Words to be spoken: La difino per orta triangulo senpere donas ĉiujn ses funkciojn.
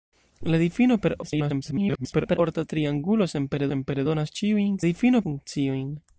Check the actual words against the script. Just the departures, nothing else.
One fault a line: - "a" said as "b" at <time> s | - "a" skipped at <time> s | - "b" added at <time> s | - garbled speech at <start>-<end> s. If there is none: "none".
- garbled speech at 1.2-2.4 s
- "senpere" added at 3.7 s
- "ses" said as "difino" at 4.8 s